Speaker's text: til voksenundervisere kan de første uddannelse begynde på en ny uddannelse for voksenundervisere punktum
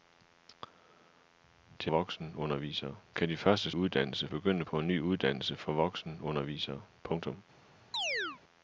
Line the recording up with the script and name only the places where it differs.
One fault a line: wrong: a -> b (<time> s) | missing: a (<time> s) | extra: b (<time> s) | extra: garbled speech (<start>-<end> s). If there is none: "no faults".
no faults